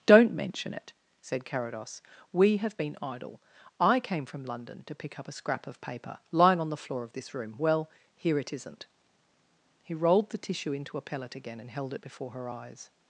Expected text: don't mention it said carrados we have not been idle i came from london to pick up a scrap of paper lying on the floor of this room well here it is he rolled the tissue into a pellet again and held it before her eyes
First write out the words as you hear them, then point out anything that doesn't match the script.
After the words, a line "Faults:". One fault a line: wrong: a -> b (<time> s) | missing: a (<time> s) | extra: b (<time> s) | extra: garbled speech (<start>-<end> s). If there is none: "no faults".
don't mention it said carrados we have been idle i came from london to pick up a scrap of paper lying on the floor of this room well here it isn't he rolled the tissue into a pellet again and held it before her eyes
Faults:
missing: not (2.8 s)
wrong: is -> isn't (8.5 s)